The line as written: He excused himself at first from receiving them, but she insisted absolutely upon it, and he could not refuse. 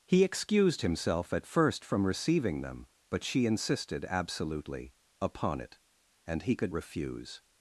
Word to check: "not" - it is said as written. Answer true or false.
false